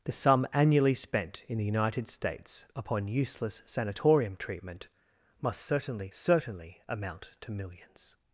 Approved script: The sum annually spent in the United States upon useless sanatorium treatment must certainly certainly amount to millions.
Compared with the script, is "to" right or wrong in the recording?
right